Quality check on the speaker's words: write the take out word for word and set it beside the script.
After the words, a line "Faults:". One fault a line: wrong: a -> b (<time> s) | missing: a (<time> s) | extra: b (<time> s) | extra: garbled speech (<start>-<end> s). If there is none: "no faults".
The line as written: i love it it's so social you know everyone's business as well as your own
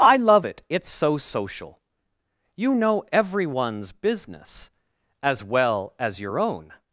i love it it's so social you know everyone's business as well as your own
Faults:
no faults